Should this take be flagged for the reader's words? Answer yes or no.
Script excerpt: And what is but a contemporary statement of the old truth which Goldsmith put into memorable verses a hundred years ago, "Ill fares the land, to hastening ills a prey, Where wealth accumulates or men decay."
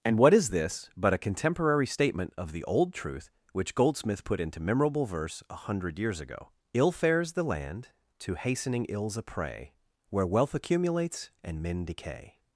yes